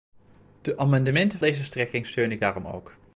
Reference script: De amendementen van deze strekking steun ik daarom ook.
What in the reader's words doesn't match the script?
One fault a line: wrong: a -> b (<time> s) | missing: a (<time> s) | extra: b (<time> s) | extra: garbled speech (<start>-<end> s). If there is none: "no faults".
missing: van (1.4 s)